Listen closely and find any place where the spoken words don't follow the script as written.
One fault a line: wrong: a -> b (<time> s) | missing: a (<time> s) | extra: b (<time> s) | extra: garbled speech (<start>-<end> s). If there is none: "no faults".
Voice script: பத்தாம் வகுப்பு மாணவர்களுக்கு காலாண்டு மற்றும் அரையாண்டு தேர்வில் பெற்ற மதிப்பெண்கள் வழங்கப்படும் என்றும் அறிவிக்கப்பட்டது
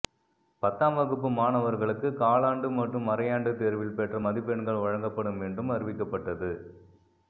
no faults